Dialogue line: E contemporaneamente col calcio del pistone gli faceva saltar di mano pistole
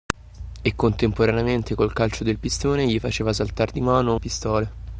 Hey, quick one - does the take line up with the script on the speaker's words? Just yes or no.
yes